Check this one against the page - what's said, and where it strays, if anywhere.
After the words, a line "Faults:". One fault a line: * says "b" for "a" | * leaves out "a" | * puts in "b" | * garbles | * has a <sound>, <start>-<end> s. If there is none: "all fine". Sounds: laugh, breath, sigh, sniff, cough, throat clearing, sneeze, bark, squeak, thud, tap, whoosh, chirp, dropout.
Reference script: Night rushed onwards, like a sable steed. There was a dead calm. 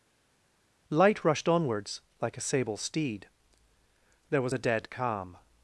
Light rushed onwards, like a sable steed. There was a dead calm.
Faults:
* says "Light" for "Night"